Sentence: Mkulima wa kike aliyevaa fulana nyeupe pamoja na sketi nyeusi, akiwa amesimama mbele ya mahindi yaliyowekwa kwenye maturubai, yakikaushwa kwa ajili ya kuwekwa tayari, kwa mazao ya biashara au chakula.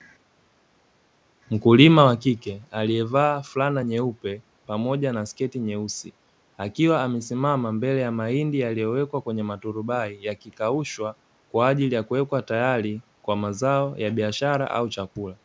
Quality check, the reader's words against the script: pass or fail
pass